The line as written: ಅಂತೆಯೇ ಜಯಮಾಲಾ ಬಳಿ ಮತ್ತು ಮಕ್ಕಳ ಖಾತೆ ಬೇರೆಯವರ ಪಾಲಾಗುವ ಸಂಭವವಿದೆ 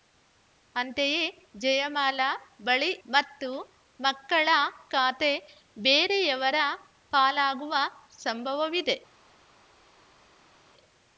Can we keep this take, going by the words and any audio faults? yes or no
yes